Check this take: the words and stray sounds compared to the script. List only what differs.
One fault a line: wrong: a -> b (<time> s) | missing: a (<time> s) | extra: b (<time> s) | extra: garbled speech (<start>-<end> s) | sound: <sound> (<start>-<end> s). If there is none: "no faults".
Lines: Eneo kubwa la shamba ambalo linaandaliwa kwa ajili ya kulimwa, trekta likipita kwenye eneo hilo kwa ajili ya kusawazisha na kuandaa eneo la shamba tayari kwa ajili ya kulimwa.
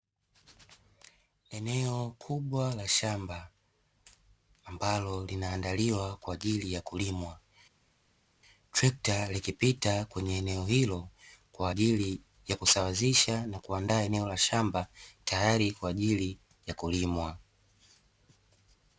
no faults